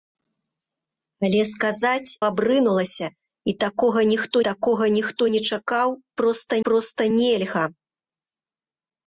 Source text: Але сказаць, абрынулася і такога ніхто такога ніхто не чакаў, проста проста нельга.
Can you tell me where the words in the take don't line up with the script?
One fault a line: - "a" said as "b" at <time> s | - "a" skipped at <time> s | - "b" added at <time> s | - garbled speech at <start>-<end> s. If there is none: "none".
none